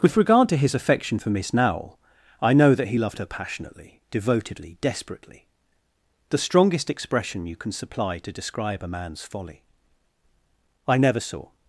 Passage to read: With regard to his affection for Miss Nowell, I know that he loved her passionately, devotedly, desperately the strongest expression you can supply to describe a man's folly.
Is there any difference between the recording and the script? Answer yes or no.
yes